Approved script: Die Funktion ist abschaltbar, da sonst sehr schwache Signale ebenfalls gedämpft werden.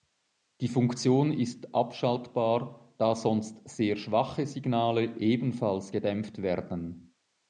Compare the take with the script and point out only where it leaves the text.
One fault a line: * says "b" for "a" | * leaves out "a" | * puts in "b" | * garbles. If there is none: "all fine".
all fine